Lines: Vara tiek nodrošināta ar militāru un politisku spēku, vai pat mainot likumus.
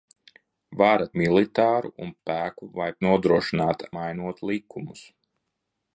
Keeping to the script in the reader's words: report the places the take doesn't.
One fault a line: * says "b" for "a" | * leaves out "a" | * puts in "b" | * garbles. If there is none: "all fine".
* leaves out "tiek nodrošināta ar"
* leaves out "politisku"
* says "nodrošināta" for "pat"